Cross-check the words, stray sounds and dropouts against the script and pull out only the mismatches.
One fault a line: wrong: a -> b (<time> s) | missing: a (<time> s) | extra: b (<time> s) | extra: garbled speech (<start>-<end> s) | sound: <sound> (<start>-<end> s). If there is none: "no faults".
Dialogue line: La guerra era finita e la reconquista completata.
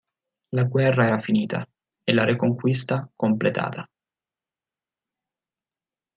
no faults